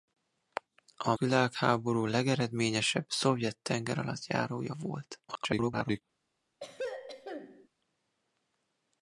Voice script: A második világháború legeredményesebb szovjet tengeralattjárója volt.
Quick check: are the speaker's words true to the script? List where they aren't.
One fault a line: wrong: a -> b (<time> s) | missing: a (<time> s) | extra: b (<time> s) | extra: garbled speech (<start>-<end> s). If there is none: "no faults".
missing: második (1.1 s)
extra: garbled speech (5.3-6.0 s)